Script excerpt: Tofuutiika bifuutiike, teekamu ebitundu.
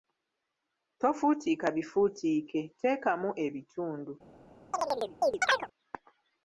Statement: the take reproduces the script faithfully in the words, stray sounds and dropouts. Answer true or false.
false